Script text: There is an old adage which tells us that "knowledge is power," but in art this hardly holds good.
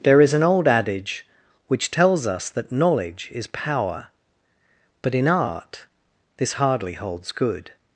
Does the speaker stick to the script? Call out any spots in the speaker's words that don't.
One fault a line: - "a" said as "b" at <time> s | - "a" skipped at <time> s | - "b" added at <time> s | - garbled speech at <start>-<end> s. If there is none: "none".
none